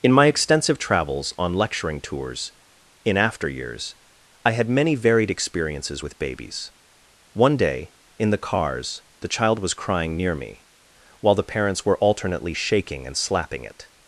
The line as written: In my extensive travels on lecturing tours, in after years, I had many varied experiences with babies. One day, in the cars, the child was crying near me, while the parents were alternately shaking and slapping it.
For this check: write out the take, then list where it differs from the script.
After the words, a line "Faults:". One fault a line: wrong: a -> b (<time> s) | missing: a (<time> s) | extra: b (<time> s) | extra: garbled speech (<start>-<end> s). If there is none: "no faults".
In my extensive travels on lecturing tours, in after years, I had many varied experiences with babies. One day, in the cars, the child was crying near me, while the parents were alternately shaking and slapping it.
Faults:
no faults